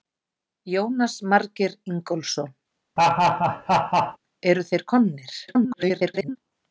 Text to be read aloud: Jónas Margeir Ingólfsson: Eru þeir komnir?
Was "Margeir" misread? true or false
false